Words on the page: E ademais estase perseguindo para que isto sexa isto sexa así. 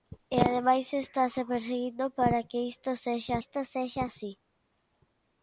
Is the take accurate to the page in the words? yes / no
yes